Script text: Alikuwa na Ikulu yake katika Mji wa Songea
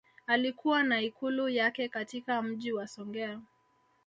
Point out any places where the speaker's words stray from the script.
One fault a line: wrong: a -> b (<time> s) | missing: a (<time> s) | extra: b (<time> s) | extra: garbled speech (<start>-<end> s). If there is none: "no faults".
no faults